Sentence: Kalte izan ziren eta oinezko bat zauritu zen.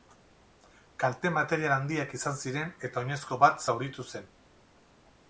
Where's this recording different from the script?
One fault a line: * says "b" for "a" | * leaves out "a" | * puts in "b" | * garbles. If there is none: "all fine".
* puts in "material handiak"